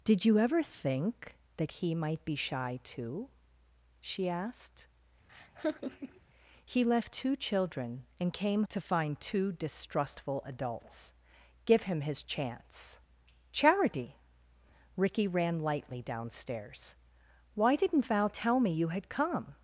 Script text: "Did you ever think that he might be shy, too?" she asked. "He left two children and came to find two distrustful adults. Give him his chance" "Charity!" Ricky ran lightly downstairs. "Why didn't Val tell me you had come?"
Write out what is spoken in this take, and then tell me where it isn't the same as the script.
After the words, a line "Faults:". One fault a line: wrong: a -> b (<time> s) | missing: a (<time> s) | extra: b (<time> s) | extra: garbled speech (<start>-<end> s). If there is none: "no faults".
"Did you ever think that he might be shy, too?" she asked. "He left two children and came to find two distrustful adults. Give him his chance" "Charity!" Ricky ran lightly downstairs. "Why didn't Val tell me you had come?"
Faults:
no faults